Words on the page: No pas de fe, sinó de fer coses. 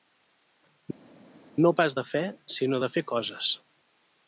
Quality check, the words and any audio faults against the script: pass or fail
pass